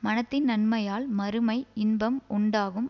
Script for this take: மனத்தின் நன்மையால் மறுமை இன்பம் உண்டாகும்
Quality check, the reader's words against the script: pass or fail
pass